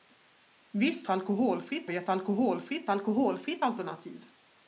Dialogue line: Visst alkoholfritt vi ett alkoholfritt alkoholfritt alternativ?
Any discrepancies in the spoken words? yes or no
no